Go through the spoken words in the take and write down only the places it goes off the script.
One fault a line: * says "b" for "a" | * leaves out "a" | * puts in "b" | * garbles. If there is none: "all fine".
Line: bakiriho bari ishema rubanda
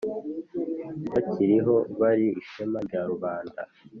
* puts in "rya"